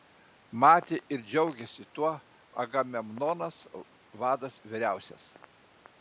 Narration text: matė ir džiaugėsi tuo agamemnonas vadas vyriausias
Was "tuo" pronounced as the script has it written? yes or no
yes